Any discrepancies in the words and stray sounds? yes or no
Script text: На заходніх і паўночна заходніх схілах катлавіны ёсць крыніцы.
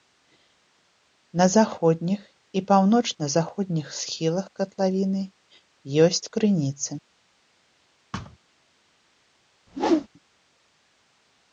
yes